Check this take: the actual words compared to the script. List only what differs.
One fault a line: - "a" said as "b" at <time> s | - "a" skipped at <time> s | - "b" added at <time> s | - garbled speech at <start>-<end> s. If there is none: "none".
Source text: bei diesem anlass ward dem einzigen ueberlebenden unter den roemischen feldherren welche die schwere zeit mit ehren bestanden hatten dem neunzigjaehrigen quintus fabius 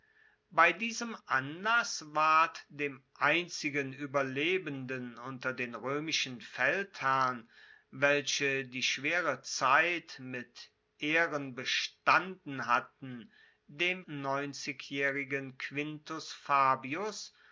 none